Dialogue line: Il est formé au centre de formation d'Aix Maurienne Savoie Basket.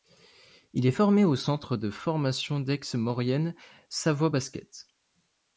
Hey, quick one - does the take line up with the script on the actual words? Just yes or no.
yes